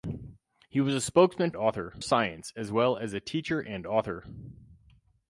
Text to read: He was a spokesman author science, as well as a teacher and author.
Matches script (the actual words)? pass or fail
pass